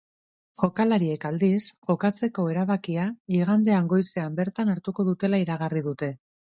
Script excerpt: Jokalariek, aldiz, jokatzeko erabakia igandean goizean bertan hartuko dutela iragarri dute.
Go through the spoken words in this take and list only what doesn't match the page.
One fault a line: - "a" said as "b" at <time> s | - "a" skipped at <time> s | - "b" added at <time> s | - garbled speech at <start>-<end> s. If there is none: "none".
none